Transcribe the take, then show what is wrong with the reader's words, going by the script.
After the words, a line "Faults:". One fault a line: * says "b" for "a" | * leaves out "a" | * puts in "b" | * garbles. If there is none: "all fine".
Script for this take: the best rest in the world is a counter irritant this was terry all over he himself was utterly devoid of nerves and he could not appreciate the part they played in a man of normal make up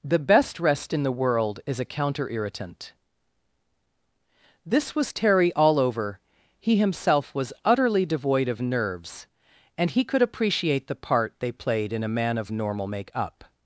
the best rest in the world is a counter irritant this was terry all over he himself was utterly devoid of nerves and he could appreciate the part they played in a man of normal make up
Faults:
* leaves out "not"